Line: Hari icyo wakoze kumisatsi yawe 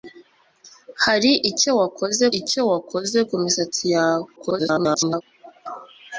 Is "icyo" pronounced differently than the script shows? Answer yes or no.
no